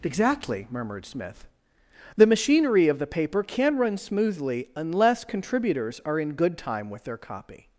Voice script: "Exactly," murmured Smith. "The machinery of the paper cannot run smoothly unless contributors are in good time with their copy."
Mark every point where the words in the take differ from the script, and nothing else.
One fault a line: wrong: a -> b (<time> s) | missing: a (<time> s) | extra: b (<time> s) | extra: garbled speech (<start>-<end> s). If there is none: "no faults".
wrong: cannot -> can (3.4 s)